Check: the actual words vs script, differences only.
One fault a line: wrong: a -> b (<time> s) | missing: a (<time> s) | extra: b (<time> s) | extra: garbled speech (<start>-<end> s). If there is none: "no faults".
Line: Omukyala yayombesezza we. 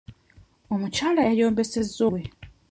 no faults